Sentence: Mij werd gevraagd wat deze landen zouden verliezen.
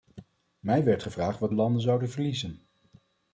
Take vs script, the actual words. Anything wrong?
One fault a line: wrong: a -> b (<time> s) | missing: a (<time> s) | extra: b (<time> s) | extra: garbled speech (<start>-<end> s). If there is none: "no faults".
missing: deze (1.5 s)